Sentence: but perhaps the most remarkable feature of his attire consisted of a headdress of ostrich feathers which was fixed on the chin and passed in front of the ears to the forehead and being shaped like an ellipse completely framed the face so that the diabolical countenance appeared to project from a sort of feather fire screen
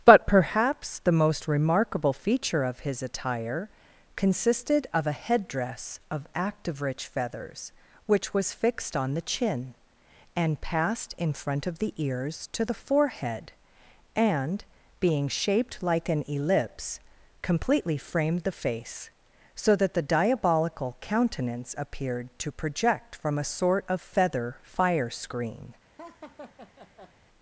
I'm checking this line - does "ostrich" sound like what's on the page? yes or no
no